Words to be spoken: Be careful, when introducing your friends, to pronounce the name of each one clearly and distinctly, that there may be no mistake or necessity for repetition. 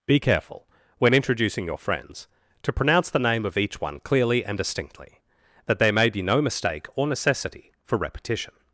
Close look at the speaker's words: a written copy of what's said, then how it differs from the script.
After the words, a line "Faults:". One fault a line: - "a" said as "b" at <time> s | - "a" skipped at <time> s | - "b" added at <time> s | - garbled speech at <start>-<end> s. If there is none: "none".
Be careful, when introducing your friends, to pronounce the name of each one clearly and distinctly, that there may be no mistake or necessity for repetition.
Faults:
none